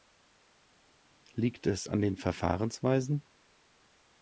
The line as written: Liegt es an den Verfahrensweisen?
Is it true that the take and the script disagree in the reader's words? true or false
false